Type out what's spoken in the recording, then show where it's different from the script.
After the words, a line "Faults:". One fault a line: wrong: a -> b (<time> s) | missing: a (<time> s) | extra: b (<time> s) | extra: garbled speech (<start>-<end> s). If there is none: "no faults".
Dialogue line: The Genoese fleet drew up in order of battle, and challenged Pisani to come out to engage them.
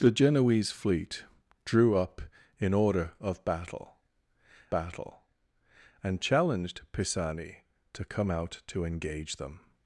The Genoese fleet drew up in order of battle battle, and challenged Pisani to come out to engage them.
Faults:
extra: battle (4.7 s)